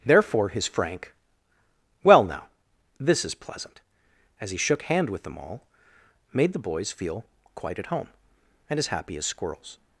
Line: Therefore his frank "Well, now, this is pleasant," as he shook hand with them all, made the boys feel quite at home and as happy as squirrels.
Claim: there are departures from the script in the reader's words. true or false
false